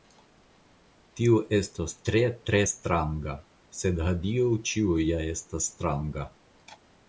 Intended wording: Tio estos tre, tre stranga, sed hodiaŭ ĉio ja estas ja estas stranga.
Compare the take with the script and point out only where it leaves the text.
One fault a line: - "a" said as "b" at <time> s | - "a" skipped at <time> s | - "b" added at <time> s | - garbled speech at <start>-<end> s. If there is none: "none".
- "ja estas" skipped at 5.7 s